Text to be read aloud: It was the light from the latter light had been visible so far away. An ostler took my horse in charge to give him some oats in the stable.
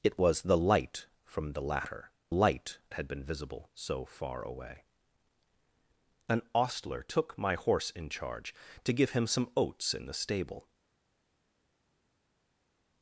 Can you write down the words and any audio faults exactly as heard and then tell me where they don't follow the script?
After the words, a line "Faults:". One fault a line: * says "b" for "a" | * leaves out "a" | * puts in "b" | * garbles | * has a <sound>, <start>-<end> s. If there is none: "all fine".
It was the light from the latter light had been visible so far away. An ostler took my horse in charge to give him some oats in the stable.
Faults:
all fine